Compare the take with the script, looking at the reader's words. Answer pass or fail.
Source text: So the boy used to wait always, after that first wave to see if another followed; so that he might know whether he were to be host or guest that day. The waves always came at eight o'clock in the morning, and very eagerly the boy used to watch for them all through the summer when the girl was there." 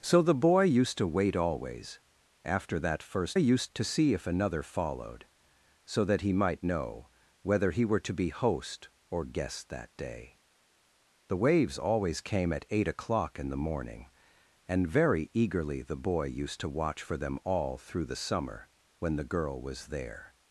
fail